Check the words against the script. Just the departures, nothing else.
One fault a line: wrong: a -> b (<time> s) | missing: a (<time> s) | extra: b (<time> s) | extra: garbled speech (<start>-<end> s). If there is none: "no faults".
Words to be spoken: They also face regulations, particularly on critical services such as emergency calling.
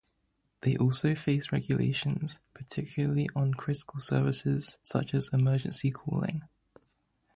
no faults